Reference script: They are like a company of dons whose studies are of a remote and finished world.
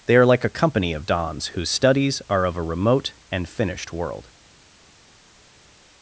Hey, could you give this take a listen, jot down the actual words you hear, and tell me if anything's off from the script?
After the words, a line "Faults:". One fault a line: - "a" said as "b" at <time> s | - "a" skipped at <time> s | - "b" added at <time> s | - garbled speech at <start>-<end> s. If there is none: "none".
They are like a company of dons whose studies are of a remote and finished world.
Faults:
none